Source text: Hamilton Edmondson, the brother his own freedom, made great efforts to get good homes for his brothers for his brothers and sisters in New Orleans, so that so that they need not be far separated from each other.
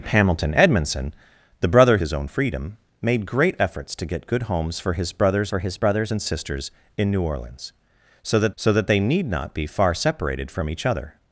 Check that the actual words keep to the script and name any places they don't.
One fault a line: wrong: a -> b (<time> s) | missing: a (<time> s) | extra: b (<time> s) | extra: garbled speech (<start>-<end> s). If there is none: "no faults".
no faults